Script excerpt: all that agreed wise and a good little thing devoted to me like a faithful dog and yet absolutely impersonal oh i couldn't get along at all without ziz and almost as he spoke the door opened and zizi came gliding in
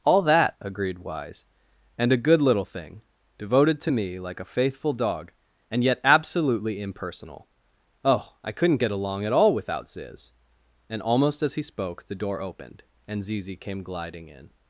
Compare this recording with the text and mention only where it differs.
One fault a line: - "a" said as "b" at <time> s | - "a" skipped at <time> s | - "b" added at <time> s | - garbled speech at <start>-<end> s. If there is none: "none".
none